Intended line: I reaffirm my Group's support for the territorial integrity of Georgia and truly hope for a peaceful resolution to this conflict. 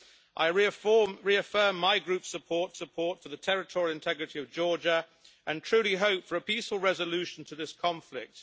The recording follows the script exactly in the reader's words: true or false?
false